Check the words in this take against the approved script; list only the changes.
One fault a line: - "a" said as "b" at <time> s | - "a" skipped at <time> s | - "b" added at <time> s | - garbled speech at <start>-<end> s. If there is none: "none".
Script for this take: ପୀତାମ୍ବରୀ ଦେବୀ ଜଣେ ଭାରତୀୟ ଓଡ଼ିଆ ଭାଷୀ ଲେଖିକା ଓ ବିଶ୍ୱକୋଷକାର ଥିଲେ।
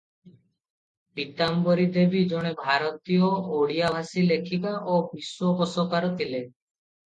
none